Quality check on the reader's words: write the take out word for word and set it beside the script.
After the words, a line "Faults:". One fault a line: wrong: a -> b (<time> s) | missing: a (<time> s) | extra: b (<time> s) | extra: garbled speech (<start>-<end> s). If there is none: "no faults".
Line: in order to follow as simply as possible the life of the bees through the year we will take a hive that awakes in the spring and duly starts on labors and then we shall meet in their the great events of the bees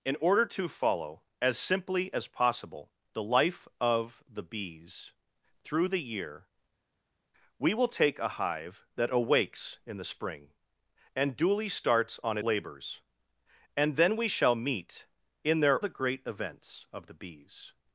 in order to follow as simply as possible the life of the bees through the year we will take a hive that awakes in the spring and duly starts on labors and then we shall meet in their the great events of the bees
Faults:
no faults